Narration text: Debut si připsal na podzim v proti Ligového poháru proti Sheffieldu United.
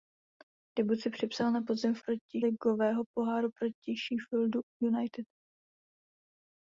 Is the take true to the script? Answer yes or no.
yes